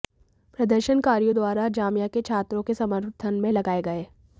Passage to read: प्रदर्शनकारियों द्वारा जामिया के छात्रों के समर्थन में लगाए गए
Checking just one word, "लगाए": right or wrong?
right